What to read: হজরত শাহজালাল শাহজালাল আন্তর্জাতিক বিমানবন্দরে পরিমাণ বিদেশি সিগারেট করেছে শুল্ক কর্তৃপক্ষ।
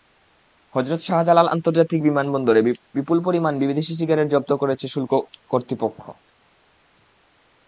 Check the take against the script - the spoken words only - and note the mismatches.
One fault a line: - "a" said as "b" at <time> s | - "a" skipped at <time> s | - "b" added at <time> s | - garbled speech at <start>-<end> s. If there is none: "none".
- "শাহজালাল" skipped at 1.5 s
- "বিপুল" added at 3.0 s
- "জব্দ" added at 4.3 s